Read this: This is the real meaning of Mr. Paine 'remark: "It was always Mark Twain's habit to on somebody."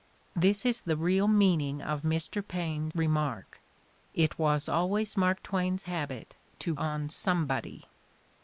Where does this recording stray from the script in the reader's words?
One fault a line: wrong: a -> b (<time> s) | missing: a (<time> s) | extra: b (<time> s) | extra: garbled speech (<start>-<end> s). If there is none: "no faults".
no faults